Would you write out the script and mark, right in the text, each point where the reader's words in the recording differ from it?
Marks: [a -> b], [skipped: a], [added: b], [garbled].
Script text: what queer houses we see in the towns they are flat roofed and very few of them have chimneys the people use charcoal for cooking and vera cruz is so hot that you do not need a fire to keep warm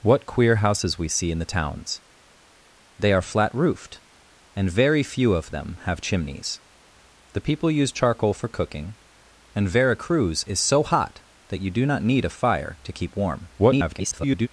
what queer houses we see in the towns they are flat roofed and very few of them have chimneys the people use charcoal for cooking and vera cruz is so hot that you do not need a fire to keep warm [garbled]